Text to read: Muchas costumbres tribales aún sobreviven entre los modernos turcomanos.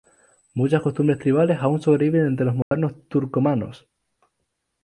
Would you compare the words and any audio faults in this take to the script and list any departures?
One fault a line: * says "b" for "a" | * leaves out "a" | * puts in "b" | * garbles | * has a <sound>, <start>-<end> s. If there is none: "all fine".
* has a dropout, 2.6-2.7 s